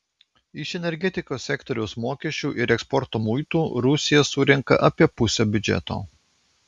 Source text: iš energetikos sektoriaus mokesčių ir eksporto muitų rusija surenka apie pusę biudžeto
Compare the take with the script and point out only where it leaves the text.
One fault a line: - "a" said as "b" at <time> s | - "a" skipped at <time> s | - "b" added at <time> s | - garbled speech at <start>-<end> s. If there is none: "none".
none